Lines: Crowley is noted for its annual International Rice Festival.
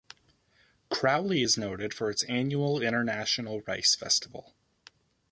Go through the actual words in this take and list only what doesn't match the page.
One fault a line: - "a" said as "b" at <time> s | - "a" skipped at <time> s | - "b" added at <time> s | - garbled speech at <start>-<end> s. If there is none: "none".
none